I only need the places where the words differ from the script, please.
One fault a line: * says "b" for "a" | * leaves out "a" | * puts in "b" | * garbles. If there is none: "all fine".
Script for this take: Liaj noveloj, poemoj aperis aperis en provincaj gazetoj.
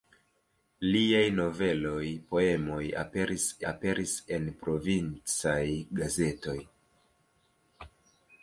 all fine